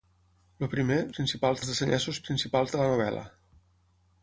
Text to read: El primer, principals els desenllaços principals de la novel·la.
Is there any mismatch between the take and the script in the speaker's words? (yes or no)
no